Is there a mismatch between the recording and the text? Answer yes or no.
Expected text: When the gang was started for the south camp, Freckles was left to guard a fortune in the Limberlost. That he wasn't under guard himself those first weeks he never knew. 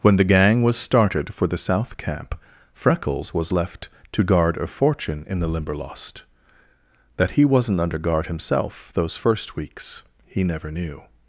no